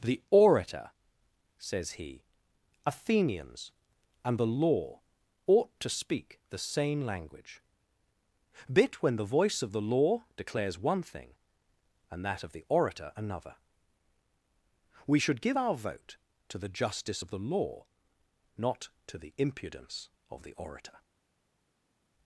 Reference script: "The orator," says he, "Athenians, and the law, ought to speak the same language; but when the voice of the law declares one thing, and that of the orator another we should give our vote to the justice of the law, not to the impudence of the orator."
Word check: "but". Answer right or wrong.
wrong